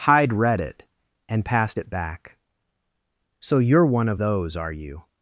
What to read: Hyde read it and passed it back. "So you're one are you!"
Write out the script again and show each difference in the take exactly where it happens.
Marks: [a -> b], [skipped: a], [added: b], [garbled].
Hyde read it and passed it back. "So you're one [added: of those] are you!"